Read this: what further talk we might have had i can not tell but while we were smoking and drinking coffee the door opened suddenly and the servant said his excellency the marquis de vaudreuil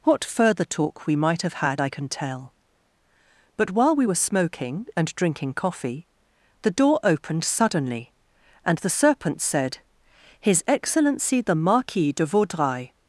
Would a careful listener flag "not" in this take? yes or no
yes